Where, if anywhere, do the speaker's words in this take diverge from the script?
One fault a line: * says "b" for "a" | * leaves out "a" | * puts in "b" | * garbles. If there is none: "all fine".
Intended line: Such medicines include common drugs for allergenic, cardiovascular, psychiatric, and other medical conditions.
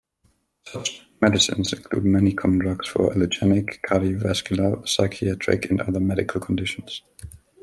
* puts in "many"